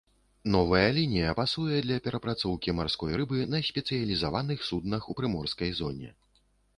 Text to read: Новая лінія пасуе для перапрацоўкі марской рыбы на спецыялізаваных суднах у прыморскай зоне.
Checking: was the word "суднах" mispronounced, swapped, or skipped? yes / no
no